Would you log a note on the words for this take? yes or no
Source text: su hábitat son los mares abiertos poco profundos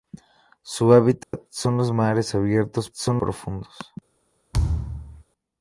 yes